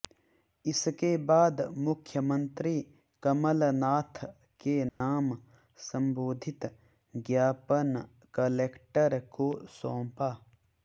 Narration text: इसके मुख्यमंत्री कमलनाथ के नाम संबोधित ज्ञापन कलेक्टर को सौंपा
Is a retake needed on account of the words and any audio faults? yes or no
yes